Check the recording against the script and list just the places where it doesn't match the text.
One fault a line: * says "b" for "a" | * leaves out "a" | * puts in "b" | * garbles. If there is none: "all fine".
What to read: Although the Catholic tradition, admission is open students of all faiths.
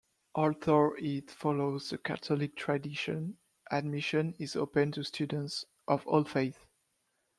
* puts in "it follows"
* puts in "to"